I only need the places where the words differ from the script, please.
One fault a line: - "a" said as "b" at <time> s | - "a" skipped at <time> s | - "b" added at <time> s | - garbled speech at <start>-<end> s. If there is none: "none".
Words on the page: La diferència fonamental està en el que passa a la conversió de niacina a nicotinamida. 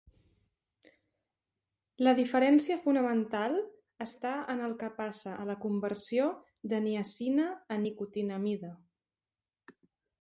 none